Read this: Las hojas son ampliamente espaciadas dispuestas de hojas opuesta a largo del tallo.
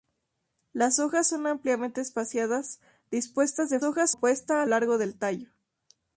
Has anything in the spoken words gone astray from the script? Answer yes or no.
no